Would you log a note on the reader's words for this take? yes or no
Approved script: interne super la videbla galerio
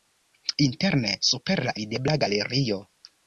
no